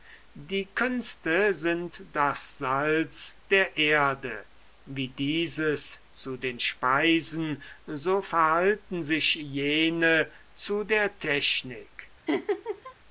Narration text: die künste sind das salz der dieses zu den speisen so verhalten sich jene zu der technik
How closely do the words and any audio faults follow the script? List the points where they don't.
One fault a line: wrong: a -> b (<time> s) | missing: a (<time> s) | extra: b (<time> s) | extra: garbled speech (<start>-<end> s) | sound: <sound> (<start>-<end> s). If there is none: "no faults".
extra: erde wie (3.8 s)
sound: laugh (12.3-12.9 s)